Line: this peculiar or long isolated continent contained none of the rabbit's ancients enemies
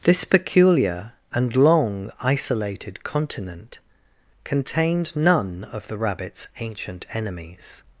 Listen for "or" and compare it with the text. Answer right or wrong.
wrong